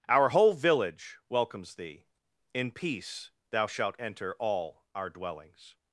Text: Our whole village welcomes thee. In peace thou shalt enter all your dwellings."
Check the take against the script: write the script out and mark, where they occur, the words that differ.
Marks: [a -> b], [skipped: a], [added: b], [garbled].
Our whole village welcomes thee. In peace thou shalt enter all [your -> our] dwellings."